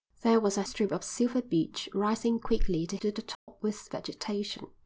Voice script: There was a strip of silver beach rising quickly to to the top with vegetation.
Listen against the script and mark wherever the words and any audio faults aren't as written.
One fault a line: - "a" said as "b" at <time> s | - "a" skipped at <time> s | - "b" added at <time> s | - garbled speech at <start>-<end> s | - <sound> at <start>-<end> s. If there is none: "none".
- dropout at 3.3-3.5 s